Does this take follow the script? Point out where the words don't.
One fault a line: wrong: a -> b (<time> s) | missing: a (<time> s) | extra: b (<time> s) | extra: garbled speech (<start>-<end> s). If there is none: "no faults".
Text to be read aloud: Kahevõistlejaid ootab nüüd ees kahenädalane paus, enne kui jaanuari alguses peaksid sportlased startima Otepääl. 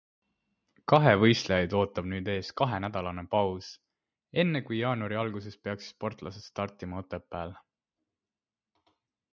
no faults